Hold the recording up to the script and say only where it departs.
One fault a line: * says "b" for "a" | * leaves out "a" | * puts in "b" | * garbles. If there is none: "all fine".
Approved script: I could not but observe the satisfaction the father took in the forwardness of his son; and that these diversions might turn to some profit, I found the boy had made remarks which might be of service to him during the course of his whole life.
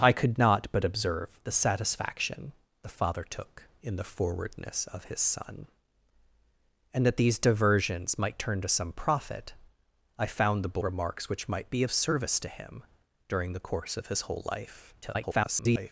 * leaves out "boy had made"
* garbles